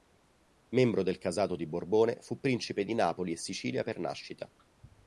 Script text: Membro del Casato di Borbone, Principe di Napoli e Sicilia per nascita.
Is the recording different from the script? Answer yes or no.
yes